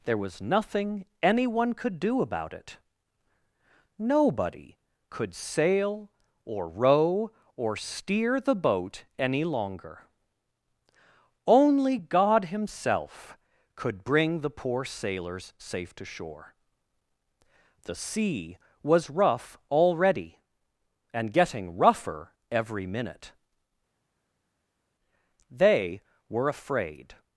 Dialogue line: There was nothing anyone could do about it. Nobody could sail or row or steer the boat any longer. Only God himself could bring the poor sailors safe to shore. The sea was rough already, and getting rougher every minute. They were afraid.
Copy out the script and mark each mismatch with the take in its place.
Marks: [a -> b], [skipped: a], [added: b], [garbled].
There was nothing anyone could do about it. Nobody could sail or row or steer the boat any longer. Only God himself could bring the poor sailors safe to shore. The sea was rough already, and getting rougher every minute. They were afraid.